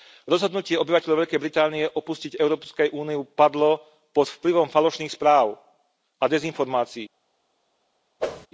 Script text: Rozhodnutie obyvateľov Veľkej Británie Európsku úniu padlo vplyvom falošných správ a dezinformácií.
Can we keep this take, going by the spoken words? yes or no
no